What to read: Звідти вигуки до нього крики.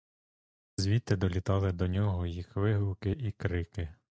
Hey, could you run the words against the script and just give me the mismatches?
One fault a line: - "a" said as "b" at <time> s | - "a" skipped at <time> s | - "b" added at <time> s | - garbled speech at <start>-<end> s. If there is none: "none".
- "вигуки" said as "долітали" at 1.1 s
- "їх вигуки і" added at 2.2 s